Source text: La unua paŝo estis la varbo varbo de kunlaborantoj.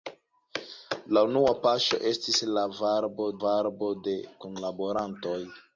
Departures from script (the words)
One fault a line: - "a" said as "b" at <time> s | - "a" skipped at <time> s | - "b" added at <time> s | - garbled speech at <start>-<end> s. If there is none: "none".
none